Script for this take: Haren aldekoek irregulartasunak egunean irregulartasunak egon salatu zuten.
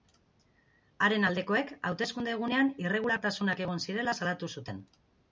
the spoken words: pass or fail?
fail